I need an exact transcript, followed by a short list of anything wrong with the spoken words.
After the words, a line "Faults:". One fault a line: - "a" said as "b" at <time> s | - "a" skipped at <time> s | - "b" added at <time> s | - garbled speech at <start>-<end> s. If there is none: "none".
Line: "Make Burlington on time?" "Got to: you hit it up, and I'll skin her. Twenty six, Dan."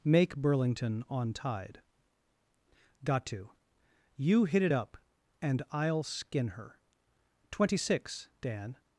"Make Burlington on tide?" "Got to: you hit it up, and I'll skin her. Twenty six, Dan."
Faults:
- "time" said as "tide" at 1.3 s